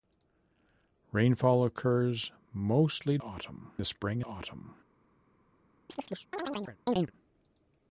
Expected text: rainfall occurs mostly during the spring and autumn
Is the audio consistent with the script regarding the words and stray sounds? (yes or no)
no